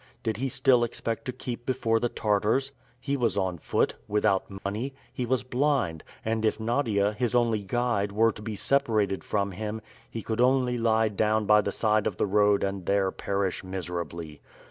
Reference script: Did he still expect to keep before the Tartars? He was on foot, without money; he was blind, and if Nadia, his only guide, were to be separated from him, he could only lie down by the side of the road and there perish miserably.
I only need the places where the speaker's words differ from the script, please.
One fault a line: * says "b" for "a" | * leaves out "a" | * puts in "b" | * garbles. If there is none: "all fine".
all fine